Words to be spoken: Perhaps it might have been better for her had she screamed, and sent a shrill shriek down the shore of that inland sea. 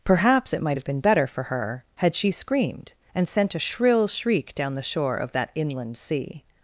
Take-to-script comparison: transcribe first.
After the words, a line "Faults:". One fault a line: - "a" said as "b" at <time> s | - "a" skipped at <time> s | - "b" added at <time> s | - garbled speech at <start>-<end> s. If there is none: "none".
Perhaps it might have been better for her had she screamed, and sent a shrill shriek down the shore of that inland sea.
Faults:
none